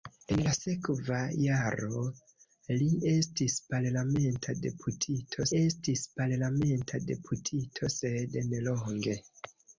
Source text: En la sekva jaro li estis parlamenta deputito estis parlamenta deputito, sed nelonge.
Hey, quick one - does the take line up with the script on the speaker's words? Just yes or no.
yes